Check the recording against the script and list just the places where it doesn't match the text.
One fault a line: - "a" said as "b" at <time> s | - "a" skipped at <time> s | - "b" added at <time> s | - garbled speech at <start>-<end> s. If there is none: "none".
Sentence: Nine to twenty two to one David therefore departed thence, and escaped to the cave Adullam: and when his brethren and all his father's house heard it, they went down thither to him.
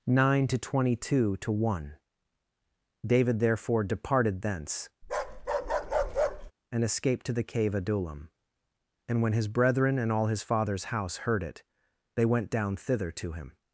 none